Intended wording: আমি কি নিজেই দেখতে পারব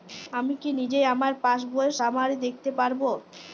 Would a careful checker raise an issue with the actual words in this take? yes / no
yes